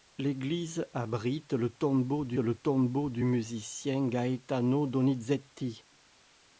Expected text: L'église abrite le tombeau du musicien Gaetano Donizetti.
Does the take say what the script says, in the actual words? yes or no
no